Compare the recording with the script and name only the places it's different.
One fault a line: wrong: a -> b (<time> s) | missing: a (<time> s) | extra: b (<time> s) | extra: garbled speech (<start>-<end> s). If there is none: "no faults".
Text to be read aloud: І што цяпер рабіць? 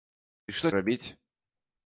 missing: цяпер (0.7 s)